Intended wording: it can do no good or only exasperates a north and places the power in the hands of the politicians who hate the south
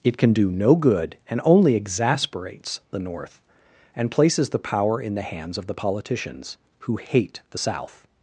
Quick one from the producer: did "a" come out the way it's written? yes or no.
no